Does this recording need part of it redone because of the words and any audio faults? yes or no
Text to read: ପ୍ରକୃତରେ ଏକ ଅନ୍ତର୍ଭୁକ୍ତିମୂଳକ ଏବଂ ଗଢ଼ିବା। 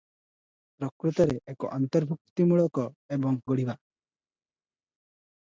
no